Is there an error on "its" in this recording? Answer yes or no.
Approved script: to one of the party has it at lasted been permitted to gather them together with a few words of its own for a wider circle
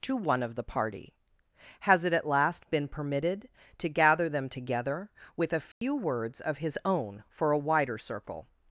yes